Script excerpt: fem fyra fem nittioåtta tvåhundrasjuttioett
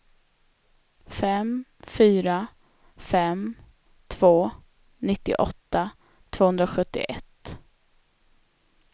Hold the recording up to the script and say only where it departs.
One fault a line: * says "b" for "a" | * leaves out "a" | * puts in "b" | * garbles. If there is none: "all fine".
* puts in "två"